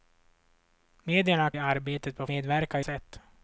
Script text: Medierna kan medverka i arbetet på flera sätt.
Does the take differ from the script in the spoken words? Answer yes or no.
yes